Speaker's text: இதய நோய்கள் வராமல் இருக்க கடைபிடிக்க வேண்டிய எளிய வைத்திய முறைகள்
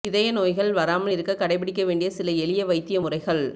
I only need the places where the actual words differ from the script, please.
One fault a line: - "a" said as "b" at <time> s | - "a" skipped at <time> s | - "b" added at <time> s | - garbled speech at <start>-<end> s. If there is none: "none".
- "சில" added at 2.1 s